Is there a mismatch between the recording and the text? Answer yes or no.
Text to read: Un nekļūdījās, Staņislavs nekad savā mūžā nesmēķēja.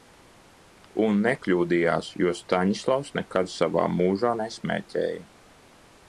yes